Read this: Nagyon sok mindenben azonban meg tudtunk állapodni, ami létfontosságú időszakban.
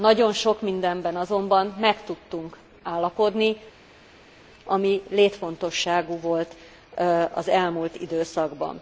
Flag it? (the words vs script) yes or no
yes